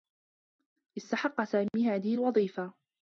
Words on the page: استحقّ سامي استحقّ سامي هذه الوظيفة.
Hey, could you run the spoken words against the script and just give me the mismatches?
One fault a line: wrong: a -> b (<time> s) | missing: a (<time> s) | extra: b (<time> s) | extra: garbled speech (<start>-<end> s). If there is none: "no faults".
missing: استحقّ سامي (1.9 s)